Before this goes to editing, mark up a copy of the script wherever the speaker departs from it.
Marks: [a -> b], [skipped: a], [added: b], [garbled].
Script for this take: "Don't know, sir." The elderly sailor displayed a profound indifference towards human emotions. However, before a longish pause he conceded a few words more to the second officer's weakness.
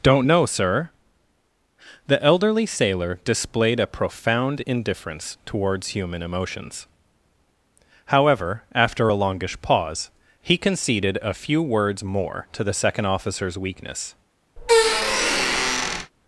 "Don't know, sir." The elderly sailor displayed a profound indifference towards human emotions. However, [before -> after] a longish pause he conceded a few words more to the second officer's weakness.